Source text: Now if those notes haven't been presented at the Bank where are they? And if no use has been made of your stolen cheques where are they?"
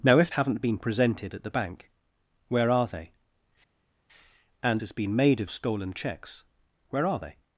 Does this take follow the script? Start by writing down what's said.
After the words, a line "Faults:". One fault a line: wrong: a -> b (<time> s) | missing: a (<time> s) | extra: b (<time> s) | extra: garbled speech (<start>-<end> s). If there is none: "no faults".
Now if haven't been presented at the Bank where are they? And has been made of stolen cheques where are they?"
Faults:
missing: those notes (0.3 s)
missing: if no use (4.8 s)
missing: your (5.5 s)